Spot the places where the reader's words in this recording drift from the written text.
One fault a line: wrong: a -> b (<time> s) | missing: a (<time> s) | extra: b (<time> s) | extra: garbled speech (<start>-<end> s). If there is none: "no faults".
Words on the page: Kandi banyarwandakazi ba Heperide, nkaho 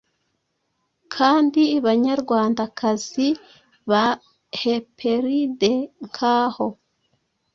no faults